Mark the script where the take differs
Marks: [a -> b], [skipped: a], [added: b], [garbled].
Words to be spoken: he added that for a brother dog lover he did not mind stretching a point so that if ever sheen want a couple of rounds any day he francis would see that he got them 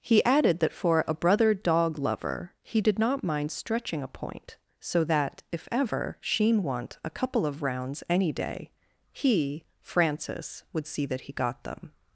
he added that for a brother dog lover he did not mind stretching a point so that if ever sheen want a couple of rounds any day he francis would see that he got them